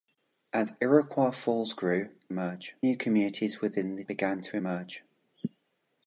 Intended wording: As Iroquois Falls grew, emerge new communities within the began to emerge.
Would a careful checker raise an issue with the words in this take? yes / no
no